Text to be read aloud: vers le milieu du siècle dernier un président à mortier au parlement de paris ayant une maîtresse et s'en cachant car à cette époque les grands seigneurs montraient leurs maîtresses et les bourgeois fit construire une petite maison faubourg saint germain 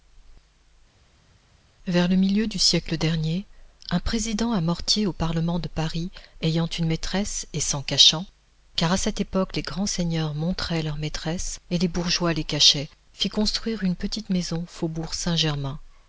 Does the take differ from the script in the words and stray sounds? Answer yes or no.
yes